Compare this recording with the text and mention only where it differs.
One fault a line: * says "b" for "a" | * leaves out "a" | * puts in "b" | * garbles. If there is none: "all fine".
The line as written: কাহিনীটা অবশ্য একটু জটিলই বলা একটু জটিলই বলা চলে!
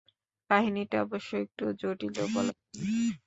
* leaves out "একটু জটিলই বলা"